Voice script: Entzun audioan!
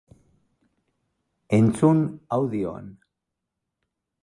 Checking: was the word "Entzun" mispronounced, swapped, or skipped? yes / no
no